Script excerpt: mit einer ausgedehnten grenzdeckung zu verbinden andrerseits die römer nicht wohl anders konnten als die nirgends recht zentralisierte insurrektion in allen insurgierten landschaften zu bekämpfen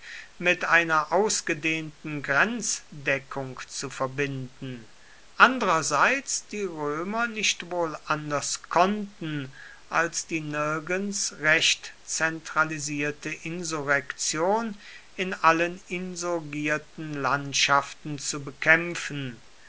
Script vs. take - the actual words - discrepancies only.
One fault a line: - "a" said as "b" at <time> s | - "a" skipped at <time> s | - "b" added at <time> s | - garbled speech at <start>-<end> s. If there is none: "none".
none